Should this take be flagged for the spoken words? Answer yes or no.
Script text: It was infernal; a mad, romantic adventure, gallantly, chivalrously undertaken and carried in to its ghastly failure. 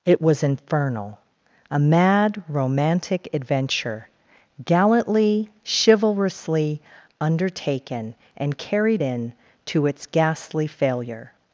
no